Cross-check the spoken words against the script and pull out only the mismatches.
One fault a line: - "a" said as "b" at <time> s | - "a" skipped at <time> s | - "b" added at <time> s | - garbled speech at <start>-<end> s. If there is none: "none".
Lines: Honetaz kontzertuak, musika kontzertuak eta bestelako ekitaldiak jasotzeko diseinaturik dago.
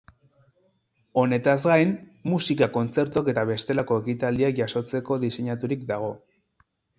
- "kontzertuak" said as "gain" at 1.7 s